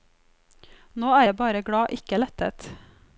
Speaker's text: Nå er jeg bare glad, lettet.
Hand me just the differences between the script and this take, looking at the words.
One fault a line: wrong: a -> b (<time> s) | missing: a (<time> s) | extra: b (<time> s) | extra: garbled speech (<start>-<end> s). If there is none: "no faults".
extra: ikke (1.9 s)